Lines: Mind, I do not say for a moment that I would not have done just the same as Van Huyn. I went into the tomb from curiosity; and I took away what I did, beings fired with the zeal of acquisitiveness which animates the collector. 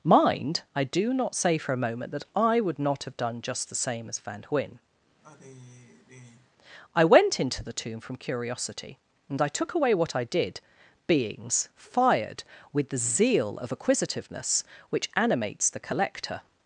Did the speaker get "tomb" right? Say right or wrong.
right